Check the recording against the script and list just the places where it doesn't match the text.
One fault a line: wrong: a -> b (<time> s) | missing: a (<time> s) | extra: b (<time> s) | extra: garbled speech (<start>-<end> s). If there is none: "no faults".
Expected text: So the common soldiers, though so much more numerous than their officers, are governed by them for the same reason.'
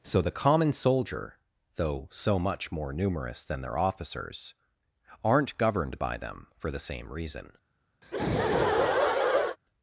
wrong: soldiers -> soldier (0.7 s)
wrong: are -> aren't (5.2 s)